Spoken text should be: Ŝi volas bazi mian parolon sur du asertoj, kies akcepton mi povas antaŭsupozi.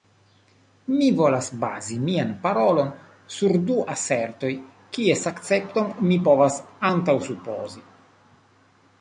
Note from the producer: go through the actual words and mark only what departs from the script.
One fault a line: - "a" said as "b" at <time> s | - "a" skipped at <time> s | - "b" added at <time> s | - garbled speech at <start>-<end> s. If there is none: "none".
- "Ŝi" said as "Mi" at 0.9 s